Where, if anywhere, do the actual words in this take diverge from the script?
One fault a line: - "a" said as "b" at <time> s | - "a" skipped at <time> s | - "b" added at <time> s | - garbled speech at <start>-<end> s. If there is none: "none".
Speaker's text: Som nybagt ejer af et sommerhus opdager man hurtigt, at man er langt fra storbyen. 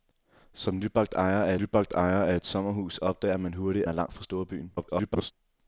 - "nybagt ejer af" added at 1.6 s
- "at man" skipped at 3.9 s
- garbled speech at 4.8-5.3 s